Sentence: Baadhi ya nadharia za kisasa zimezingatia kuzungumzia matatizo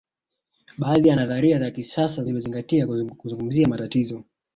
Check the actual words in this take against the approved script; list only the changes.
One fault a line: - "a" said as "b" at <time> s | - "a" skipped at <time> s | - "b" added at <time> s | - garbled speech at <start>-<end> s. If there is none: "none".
none